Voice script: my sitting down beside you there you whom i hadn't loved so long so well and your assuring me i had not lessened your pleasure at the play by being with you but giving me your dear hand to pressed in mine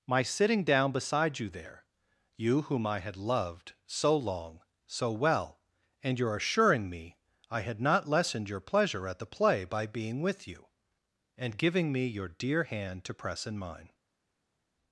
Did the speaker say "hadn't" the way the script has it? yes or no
no